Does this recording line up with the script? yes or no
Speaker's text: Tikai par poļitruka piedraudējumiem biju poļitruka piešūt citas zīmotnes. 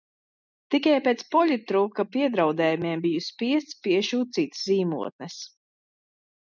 no